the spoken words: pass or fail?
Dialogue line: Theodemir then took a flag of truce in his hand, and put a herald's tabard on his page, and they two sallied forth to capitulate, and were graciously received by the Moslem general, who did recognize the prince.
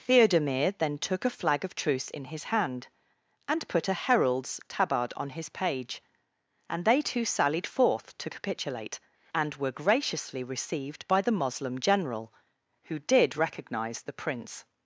pass